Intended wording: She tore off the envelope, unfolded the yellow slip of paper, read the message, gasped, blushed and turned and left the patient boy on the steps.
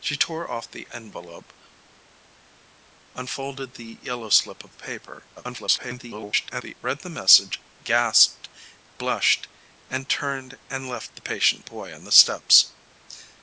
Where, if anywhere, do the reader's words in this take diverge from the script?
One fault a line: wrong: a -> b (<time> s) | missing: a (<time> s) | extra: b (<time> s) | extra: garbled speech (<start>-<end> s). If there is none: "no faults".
extra: garbled speech (5.4-6.7 s)